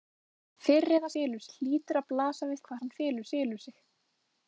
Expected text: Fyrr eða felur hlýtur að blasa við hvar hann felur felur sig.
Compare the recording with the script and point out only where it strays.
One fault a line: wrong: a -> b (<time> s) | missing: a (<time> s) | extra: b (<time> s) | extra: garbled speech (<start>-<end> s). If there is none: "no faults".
no faults